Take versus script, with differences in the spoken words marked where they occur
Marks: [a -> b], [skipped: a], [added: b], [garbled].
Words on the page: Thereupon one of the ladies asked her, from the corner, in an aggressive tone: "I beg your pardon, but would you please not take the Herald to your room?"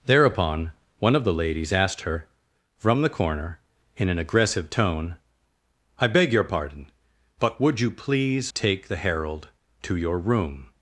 Thereupon one of the ladies asked her, from the corner, in an aggressive tone: "I beg your pardon, but would you please [skipped: not] take the Herald to your room?"